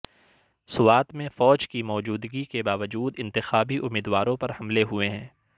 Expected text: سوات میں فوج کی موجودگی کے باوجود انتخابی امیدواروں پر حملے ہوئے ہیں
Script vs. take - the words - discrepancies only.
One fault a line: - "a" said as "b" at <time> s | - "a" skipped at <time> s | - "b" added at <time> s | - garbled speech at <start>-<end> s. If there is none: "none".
none